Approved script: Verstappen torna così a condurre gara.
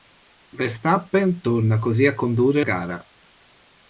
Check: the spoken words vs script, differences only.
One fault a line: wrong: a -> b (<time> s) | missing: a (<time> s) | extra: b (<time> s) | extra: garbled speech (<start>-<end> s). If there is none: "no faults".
no faults